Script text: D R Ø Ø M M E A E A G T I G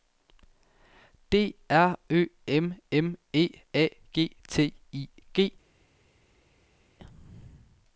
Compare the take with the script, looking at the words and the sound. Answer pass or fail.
fail